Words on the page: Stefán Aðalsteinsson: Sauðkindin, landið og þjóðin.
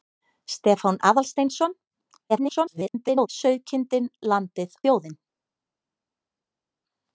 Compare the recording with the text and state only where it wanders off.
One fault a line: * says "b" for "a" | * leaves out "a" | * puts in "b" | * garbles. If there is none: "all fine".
* garbles
* leaves out "og"